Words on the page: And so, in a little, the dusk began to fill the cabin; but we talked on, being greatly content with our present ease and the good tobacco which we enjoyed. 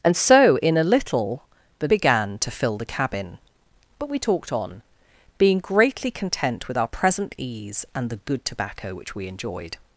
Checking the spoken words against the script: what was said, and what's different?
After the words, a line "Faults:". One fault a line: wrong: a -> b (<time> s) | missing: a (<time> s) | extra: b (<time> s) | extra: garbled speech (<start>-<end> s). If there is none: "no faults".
And so, in a little, the began to fill the cabin; but we talked on, being greatly content with our present ease and the good tobacco which we enjoyed.
Faults:
missing: dusk (1.9 s)